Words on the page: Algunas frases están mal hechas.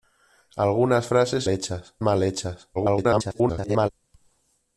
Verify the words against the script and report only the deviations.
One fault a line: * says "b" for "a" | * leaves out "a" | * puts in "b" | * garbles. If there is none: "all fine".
* says "hechas" for "están"
* garbles